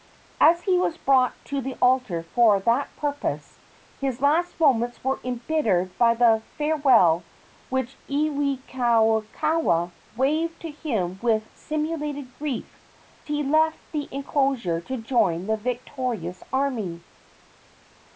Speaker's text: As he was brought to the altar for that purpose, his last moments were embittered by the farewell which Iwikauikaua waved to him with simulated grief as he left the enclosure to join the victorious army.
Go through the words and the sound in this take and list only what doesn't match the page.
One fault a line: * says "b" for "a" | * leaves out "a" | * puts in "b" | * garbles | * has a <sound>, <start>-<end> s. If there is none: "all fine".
* leaves out "as"